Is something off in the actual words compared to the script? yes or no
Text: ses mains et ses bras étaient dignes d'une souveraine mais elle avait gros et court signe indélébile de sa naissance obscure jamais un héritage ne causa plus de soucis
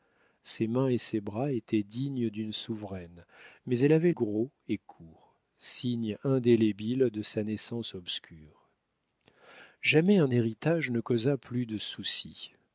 no